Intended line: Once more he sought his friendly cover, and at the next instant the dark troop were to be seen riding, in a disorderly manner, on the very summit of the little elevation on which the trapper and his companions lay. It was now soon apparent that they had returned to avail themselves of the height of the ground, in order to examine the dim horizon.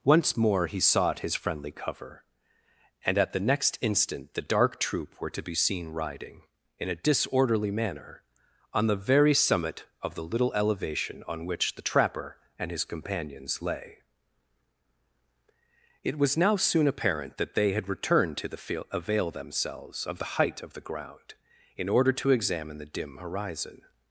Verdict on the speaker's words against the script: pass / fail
fail